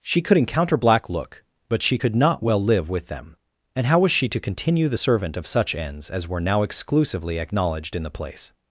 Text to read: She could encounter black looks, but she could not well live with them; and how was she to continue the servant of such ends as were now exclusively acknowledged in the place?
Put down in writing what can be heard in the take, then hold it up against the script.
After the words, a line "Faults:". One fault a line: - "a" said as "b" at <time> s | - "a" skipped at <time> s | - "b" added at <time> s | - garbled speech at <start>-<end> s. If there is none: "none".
She could encounter black look, but she could not well live with them; and how was she to continue the servant of such ends as were now exclusively acknowledged in the place?
Faults:
- "looks" said as "look" at 1.1 s